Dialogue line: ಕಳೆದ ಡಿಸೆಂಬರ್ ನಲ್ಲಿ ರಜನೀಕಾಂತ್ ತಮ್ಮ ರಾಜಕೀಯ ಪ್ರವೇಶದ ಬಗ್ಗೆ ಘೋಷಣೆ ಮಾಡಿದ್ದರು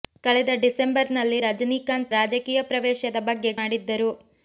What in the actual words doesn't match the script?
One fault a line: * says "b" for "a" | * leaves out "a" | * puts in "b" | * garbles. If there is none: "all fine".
* leaves out "ತಮ್ಮ"
* leaves out "ಘೋಷಣೆ"